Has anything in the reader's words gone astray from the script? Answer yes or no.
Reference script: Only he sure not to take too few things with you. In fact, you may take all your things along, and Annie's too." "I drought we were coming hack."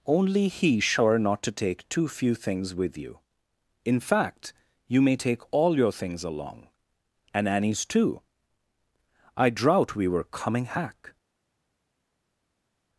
no